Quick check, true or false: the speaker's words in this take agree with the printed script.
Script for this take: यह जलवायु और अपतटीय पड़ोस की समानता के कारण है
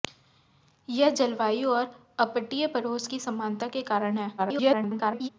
false